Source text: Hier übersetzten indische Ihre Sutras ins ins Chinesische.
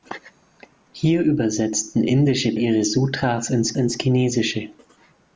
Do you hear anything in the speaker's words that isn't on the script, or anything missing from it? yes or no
no